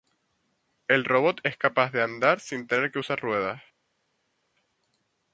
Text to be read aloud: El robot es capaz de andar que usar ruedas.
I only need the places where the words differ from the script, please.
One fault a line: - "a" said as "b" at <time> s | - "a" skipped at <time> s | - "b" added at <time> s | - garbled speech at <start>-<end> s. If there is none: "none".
- "sin tener" added at 2.4 s